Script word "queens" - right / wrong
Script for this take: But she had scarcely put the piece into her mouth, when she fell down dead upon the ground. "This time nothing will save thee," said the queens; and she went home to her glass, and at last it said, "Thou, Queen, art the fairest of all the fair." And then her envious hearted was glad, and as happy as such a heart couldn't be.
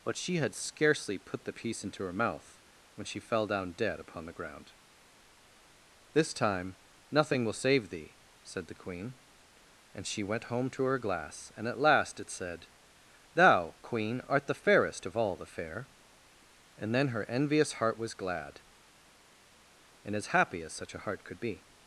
wrong